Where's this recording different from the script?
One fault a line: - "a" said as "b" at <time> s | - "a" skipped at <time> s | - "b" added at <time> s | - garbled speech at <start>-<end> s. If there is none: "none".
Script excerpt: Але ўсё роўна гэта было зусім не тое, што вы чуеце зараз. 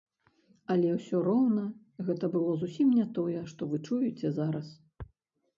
none